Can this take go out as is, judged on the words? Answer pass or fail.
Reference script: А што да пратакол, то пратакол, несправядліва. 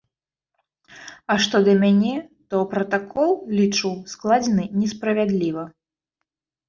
fail